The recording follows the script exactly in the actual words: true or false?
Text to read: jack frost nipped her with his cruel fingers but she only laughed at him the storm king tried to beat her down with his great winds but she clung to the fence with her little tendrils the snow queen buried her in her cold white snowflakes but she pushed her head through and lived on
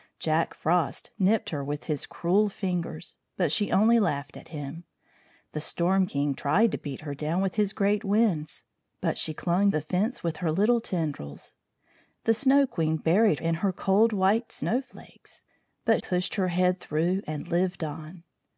false